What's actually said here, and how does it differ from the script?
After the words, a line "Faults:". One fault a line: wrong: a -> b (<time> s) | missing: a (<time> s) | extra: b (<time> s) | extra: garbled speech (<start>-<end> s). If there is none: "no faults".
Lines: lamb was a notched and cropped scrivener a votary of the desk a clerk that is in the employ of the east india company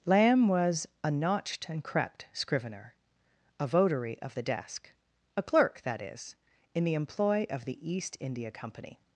lamb was a notched and crept scrivener a votary of the desk a clerk that is in the employ of the east india company
Faults:
wrong: cropped -> crept (1.8 s)